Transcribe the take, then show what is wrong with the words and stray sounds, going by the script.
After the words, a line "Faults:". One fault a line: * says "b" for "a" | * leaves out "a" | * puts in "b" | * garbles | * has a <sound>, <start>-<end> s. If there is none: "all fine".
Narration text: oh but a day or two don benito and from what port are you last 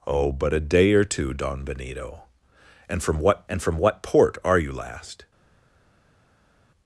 oh but a day or two don benito and from what and from what port are you last
Faults:
* puts in "and from what"